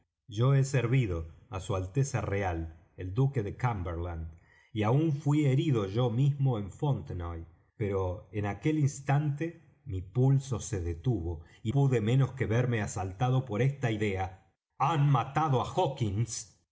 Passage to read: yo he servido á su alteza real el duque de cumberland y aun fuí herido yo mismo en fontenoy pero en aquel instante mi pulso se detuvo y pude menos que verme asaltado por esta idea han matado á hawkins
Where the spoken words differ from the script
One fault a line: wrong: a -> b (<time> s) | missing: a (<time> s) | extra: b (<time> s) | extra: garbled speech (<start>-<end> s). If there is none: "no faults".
no faults